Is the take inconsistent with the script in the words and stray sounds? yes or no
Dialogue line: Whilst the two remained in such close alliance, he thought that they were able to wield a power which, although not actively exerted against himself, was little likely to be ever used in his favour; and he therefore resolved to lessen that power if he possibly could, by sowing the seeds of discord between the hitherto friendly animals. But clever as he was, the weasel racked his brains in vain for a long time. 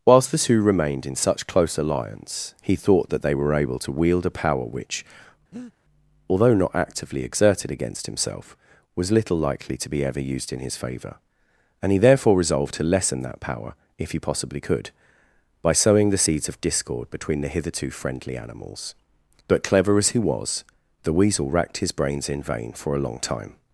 yes